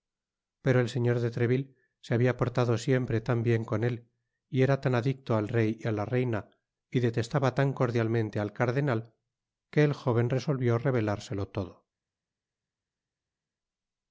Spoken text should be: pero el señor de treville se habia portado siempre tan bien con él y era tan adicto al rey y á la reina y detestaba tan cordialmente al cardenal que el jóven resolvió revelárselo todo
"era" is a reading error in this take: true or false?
false